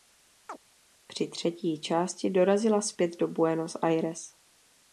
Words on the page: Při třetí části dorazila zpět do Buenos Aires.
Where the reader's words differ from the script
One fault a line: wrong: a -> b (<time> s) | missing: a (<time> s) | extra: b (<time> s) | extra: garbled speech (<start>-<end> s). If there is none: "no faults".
no faults